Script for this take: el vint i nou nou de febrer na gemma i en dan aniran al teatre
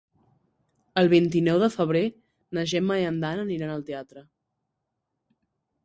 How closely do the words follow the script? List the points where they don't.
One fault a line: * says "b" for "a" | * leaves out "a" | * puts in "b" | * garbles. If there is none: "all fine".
* leaves out "nou"